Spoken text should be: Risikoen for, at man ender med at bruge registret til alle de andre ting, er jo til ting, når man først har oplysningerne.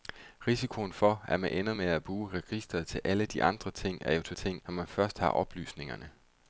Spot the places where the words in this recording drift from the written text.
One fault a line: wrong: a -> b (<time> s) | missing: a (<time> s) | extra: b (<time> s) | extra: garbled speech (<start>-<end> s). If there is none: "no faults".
no faults